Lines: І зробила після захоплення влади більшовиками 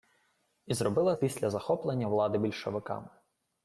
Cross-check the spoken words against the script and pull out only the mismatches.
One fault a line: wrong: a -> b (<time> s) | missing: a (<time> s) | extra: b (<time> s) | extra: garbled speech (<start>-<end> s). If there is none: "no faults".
no faults